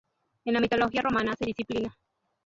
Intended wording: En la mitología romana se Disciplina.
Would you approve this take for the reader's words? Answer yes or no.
yes